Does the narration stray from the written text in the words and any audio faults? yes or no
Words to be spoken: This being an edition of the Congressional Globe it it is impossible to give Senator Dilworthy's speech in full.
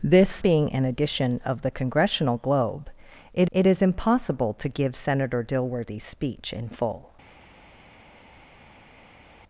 no